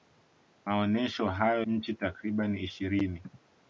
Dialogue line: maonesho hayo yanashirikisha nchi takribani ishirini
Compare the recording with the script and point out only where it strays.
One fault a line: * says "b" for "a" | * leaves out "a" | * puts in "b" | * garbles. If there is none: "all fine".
* leaves out "yanashirikisha"